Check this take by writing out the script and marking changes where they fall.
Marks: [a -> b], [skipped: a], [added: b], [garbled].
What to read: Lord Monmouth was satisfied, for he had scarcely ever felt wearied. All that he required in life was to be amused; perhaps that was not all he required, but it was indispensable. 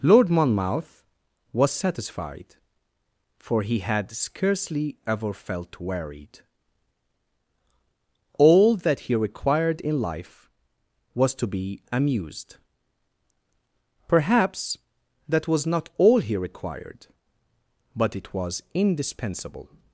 Lord Monmouth was satisfied, for he had scarcely ever felt wearied. All that he required in life was to be amused; perhaps that was not all he required, but it was indispensable.